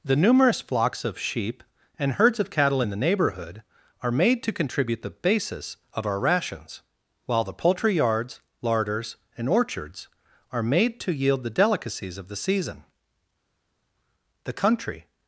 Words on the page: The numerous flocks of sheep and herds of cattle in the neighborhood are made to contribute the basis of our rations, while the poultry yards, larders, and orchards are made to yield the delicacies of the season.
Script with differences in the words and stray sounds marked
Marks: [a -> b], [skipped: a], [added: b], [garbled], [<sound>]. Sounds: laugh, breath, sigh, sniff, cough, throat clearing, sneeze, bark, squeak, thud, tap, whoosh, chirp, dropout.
The numerous flocks of sheep and herds of cattle in the neighborhood are made to contribute the basis of our rations, while the poultry yards, larders, and orchards are made to yield the delicacies of the season. [added: The country]